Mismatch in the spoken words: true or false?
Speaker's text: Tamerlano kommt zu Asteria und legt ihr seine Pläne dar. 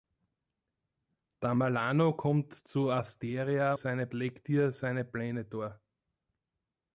true